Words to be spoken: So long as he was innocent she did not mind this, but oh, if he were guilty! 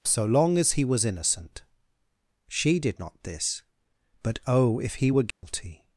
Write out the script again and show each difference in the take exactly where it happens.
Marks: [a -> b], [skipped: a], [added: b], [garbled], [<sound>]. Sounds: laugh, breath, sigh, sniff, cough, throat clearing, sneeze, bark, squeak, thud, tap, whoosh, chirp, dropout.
So long as he was innocent she did not [skipped: mind] this, but oh, if he were guilty! [dropout]